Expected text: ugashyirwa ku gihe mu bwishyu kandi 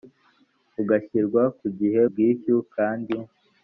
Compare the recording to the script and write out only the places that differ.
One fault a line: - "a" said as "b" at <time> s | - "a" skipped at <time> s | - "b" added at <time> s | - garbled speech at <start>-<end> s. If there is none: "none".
- "mu" skipped at 2.0 s